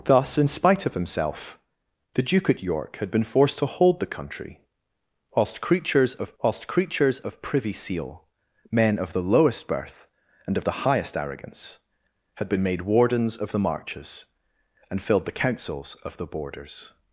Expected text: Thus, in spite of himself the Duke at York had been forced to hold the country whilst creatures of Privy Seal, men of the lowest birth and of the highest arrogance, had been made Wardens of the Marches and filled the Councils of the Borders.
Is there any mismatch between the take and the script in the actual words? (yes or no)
yes